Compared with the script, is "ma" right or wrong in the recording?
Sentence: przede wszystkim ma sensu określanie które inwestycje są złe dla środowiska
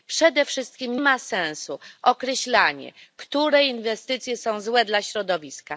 right